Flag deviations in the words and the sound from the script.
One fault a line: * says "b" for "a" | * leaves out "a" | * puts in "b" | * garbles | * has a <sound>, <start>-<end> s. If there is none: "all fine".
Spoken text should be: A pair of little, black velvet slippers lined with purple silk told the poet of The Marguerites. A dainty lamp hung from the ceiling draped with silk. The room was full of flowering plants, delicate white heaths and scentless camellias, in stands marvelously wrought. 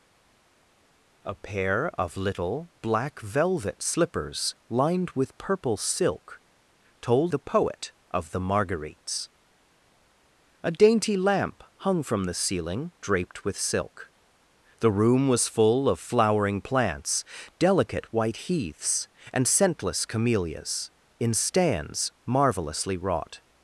all fine